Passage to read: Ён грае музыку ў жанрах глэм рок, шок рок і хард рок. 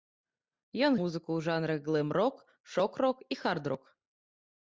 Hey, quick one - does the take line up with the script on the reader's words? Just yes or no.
no